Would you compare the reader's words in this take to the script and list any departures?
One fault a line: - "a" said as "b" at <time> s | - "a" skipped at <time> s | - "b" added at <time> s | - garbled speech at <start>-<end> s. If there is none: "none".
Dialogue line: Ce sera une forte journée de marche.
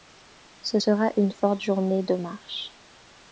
none